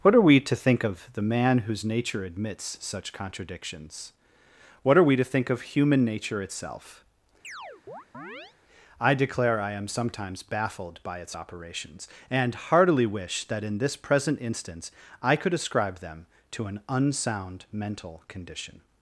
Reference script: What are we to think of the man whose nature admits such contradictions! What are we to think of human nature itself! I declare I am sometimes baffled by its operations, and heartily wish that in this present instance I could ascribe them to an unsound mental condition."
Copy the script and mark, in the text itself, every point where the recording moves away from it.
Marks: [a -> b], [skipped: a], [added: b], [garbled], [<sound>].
What are we to think of the man whose nature admits such contradictions! What are we to think of human nature itself! [chirp] I declare I am sometimes baffled by its operations, and heartily wish that in this present instance I could ascribe them to an unsound mental condition."